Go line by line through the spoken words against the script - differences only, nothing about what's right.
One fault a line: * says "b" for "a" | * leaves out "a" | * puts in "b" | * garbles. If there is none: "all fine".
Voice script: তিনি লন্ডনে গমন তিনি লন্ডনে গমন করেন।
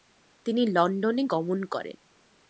* leaves out "তিনি লন্ডনে গমন"